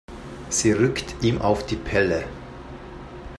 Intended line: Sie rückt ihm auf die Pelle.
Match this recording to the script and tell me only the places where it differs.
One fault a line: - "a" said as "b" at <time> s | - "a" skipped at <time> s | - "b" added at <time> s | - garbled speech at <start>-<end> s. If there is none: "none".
none